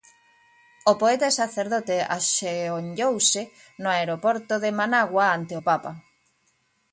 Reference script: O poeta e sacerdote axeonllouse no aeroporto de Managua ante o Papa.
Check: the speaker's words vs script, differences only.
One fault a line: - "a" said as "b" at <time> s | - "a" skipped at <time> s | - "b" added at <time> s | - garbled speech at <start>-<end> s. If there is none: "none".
none